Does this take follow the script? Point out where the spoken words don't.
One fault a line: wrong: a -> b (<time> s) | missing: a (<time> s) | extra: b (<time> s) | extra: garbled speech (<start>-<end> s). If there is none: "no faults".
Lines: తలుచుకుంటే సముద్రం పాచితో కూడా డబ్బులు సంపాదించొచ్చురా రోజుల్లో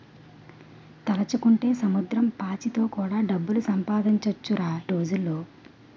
no faults